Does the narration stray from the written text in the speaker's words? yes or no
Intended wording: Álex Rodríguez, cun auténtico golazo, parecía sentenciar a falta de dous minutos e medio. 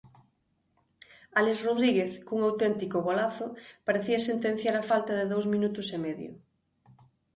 no